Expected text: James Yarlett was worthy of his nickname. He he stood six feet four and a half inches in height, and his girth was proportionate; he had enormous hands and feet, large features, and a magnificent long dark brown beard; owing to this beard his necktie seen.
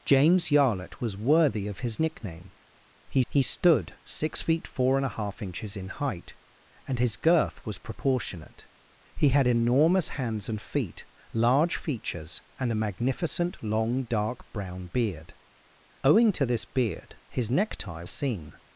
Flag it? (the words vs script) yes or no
no